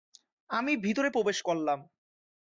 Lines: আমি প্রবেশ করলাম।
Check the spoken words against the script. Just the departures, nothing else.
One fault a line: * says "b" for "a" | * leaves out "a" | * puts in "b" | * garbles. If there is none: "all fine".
* puts in "ভিতরে"